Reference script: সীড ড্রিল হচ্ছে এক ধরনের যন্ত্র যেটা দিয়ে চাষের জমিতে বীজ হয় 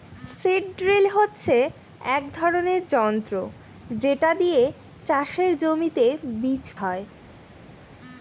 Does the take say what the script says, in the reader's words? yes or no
yes